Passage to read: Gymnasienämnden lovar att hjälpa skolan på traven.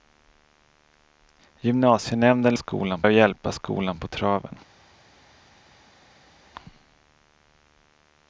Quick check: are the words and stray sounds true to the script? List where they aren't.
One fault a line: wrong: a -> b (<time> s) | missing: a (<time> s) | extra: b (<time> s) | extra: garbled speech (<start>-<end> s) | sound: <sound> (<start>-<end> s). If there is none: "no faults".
wrong: lovar -> skolan (2.5 s)